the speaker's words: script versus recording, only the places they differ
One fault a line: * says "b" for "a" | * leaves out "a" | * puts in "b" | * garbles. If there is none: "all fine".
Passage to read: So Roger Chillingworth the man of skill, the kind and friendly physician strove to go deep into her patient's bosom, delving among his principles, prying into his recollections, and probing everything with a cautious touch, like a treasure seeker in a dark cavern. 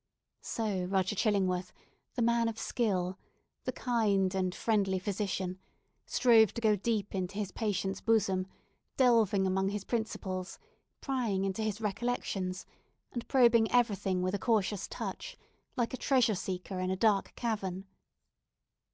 * says "his" for "her"